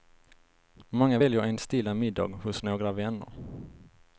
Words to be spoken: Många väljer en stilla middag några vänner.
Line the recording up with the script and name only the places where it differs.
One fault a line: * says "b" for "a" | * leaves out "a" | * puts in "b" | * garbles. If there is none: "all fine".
* puts in "hos"